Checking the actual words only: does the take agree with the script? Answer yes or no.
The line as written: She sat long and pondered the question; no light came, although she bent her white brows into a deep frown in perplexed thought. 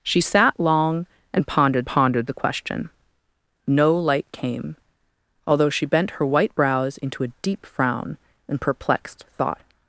no